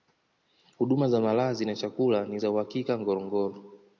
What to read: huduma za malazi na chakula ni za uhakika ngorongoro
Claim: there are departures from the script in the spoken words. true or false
false